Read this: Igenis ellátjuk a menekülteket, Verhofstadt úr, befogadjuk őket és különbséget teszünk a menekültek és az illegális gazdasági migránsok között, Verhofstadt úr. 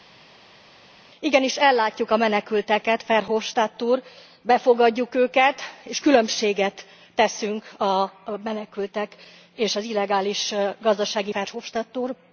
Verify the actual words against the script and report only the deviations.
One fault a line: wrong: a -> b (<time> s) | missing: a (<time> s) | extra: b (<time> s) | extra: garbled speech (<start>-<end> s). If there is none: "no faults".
missing: migránsok között (11.3 s)